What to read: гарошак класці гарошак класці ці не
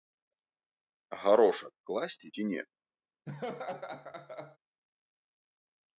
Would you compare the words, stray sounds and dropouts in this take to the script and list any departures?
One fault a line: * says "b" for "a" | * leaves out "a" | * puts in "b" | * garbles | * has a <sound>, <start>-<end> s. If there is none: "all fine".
* leaves out "гарошак класці"
* has a laugh, 3.3-4.6 s